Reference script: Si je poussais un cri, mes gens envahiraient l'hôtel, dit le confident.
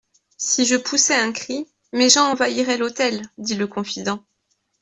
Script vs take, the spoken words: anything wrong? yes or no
no